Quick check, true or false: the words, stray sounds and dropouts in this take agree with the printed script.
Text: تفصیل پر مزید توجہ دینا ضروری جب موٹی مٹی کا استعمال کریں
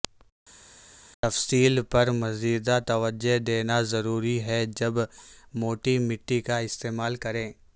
false